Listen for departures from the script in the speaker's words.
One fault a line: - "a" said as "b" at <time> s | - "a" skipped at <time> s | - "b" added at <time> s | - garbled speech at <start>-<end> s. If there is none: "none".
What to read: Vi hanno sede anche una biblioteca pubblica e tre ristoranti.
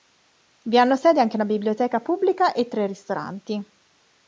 none